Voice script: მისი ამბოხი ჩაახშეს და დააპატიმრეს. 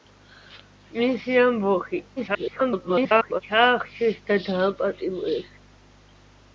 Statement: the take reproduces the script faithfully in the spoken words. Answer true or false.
false